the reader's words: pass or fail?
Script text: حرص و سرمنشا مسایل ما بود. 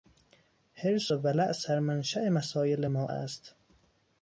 fail